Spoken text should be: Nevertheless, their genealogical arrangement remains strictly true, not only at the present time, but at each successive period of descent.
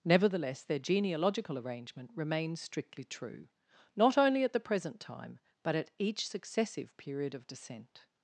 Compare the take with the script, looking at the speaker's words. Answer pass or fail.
pass